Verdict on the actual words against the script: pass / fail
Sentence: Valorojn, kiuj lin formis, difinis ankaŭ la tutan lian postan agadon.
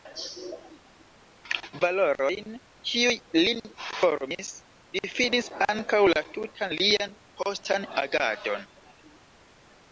pass